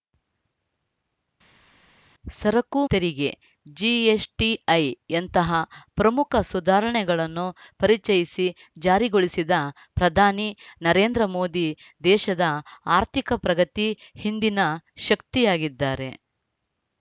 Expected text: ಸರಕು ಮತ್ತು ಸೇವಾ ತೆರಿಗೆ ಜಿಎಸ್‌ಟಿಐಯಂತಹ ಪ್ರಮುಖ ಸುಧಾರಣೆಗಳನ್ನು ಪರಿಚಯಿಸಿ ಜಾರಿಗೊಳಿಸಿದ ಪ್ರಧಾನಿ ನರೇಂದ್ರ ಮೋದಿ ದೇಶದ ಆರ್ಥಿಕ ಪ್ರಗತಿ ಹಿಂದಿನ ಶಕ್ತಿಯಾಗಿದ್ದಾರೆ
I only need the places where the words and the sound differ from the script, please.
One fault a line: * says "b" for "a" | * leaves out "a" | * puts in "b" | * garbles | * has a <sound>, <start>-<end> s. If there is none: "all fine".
* leaves out "ಮತ್ತು ಸೇವಾ"